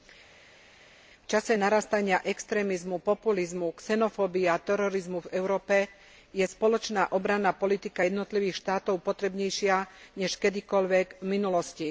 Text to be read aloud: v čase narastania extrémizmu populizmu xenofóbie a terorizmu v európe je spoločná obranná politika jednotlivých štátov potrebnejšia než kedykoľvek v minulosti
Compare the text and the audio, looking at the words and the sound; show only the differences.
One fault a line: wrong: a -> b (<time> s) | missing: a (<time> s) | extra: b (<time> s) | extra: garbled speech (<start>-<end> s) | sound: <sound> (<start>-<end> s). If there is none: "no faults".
no faults